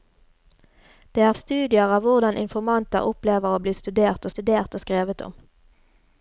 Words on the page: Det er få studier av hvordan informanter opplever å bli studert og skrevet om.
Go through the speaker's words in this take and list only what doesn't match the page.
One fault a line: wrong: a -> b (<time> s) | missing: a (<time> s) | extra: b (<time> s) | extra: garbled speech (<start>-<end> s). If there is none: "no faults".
missing: få (1.3 s)
extra: studert (4.3 s)